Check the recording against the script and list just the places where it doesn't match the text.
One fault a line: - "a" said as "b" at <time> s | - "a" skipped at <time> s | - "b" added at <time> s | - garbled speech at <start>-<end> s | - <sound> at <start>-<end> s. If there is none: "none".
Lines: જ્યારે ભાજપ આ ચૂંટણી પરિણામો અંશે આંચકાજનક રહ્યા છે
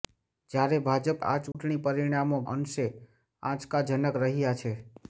- dropout at 1.5-1.5 s